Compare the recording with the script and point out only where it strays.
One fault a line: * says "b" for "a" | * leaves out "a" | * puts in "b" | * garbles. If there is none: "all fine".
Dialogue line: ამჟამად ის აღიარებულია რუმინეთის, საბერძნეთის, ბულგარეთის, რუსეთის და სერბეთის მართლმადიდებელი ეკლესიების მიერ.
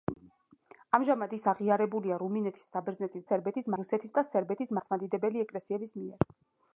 * says "სერბეთის" for "ბულგარეთის"